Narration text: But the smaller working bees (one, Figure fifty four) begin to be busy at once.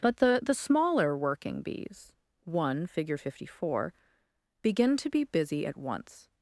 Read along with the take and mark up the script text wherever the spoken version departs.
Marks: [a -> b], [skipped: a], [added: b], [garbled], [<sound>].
But the [added: the] smaller working bees (one, Figure fifty four) begin to be busy at once.